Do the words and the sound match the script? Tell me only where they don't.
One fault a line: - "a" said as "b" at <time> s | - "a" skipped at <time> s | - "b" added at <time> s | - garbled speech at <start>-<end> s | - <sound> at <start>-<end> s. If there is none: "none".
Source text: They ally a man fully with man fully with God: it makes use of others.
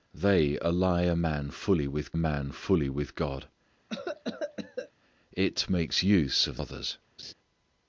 - cough at 3.9-4.9 s
- laugh at 7.2-7.3 s